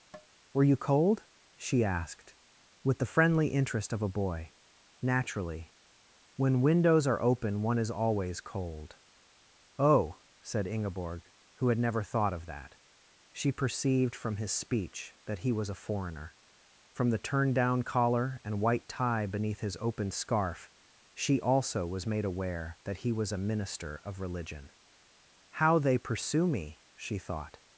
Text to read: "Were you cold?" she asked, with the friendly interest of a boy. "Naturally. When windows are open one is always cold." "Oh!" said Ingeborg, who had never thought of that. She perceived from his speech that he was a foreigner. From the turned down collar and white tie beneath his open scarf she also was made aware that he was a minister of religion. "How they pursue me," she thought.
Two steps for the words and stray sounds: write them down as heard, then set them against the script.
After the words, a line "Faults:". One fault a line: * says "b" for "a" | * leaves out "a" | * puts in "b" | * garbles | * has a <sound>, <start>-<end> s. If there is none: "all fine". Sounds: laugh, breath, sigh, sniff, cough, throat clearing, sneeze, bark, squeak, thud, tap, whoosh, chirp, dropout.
"Were you cold?" she asked, with the friendly interest of a boy. "Naturally. When windows are open one is always cold." "Oh!" said Ingeborg, who had never thought of that. She perceived from his speech that he was a foreigner. From the turned down collar and white tie beneath his open scarf she also was made aware that he was a minister of religion. "How they pursue me," she thought.
Faults:
* has a tap, 0.1-0.3 s